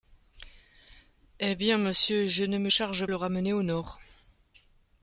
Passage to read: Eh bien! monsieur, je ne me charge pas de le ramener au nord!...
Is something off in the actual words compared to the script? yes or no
yes